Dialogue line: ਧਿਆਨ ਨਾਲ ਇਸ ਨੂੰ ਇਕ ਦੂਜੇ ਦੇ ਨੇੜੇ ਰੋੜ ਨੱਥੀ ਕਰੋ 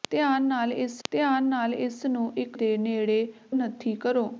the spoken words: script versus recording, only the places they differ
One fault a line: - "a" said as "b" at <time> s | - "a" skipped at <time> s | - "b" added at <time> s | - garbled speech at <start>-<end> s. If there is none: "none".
- "ਧਿਆਨ ਨਾਲ ਇਸ" added at 1.1 s
- "ਦੂਜੇ" skipped at 2.6 s
- "ਰੋੜ" skipped at 3.3 s